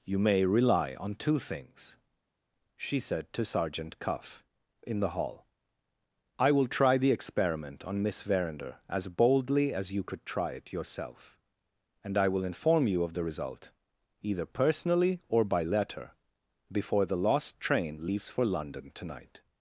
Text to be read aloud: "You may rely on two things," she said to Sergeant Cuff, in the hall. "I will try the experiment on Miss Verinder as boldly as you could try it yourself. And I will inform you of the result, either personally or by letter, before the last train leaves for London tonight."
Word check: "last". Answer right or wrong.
wrong